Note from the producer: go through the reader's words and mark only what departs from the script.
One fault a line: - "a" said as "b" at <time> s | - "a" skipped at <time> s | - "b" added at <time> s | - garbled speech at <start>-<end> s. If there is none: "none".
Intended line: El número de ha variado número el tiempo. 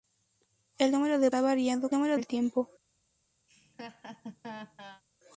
none